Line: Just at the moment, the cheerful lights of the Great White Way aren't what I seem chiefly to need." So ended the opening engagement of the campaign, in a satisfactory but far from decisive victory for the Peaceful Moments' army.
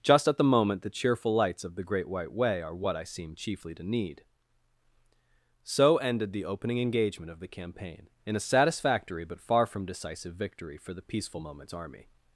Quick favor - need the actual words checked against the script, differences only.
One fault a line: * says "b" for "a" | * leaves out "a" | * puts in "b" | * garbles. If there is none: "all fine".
* says "are" for "aren't"